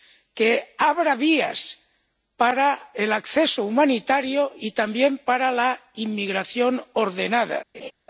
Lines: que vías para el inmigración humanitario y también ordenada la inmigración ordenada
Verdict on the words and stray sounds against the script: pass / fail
fail